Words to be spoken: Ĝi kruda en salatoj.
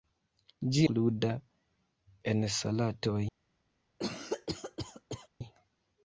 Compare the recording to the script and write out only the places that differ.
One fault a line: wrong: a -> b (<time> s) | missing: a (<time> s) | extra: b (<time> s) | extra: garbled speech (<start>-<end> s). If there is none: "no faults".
no faults